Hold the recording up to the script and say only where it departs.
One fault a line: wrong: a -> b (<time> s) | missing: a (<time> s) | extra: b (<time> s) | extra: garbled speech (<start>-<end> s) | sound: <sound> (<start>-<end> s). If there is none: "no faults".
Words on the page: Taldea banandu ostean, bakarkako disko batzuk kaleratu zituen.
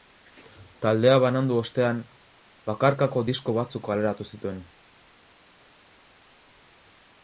no faults